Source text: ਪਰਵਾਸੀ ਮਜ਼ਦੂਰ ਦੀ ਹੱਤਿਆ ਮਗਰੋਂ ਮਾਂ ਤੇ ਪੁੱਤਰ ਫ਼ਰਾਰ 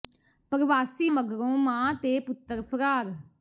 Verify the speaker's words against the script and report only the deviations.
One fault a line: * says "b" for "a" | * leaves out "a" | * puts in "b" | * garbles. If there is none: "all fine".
* leaves out "ਮਜ਼ਦੂਰ ਦੀ ਹੱਤਿਆ"